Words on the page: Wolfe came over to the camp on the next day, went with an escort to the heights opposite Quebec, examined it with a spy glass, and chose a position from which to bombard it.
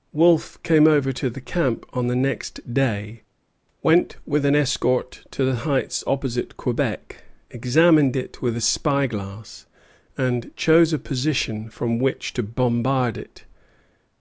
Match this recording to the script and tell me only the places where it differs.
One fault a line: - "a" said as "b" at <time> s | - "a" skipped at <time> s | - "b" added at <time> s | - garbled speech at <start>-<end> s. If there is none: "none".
none